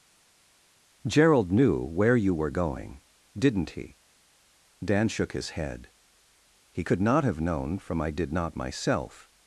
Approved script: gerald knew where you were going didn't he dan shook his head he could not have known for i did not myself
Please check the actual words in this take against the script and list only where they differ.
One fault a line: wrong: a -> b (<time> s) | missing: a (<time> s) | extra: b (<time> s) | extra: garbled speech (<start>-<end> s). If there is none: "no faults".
wrong: for -> from (7.8 s)